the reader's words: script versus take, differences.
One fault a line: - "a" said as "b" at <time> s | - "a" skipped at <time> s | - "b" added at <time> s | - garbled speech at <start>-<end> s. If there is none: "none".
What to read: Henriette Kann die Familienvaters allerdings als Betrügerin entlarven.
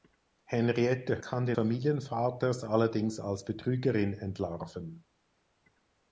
none